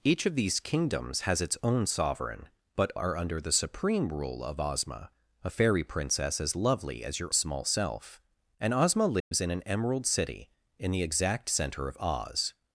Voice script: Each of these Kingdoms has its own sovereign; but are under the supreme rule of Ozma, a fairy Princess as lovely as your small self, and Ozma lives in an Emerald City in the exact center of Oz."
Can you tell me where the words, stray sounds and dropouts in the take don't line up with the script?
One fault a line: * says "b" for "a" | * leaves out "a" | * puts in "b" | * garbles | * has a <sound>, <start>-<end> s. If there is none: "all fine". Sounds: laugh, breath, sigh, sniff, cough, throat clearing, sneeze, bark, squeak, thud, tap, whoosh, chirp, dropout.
* has a dropout, 9.2-9.3 s